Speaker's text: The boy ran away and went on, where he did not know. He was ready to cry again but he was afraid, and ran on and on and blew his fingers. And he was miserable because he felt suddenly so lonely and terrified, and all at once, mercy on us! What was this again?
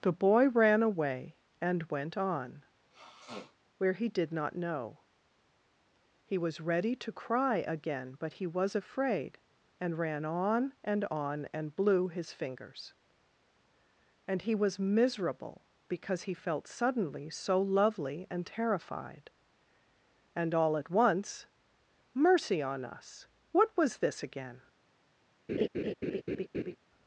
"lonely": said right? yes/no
no